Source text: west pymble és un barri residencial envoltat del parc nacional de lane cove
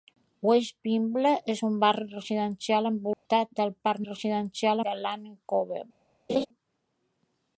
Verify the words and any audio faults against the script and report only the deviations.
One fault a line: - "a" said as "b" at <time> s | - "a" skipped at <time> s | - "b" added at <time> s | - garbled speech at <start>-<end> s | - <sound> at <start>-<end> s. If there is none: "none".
- dropout at 3.1-3.3 s
- "nacional" said as "residencial" at 4.1 s
- laugh at 6.3-6.5 s